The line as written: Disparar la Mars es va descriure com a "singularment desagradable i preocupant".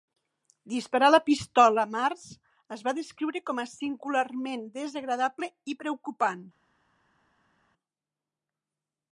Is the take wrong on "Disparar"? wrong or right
right